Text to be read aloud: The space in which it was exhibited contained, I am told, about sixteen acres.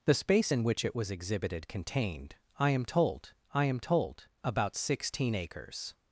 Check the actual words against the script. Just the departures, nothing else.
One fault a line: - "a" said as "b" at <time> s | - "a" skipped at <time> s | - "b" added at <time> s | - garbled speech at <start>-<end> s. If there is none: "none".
- "I am told" added at 3.5 s